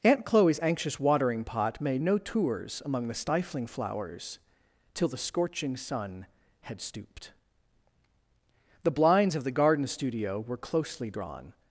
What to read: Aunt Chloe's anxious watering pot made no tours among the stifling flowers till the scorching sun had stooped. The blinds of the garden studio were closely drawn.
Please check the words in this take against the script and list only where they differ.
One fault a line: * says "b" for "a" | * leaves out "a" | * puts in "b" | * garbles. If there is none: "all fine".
all fine